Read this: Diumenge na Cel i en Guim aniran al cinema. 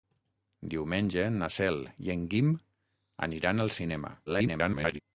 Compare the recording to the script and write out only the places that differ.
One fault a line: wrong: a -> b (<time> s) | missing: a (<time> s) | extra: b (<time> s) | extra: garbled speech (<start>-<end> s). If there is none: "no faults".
extra: garbled speech (4.3-5.0 s)